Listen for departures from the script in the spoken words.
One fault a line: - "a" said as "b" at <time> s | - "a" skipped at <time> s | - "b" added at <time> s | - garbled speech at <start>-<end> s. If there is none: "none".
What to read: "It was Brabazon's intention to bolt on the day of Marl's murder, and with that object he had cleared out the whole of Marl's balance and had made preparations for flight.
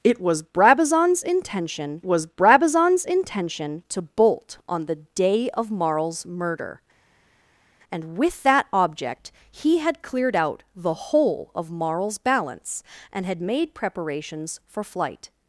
- "was Brabazon's intention" added at 2.0 s